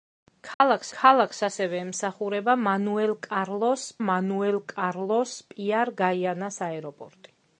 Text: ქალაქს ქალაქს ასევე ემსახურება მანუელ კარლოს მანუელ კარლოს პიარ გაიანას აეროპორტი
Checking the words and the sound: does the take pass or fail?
fail